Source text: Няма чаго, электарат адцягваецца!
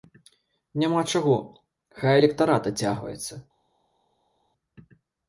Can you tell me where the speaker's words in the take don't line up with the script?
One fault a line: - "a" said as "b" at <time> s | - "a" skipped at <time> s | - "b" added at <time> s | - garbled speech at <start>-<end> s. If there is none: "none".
- "хай" added at 2.0 s